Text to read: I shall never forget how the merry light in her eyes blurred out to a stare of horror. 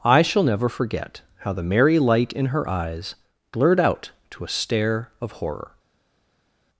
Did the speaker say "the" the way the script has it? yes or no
yes